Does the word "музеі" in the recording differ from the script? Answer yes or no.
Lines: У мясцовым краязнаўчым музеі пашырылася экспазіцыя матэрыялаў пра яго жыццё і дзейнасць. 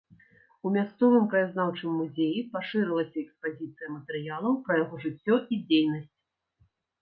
no